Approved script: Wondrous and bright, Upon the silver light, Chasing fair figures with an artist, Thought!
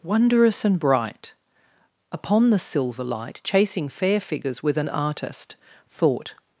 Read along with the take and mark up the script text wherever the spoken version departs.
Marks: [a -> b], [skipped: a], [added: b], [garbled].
Wondrous and bright, Upon the silver light, Chasing fair figures with an artist, Thought!